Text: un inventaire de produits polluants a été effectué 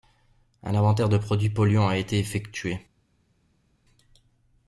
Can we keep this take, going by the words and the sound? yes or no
yes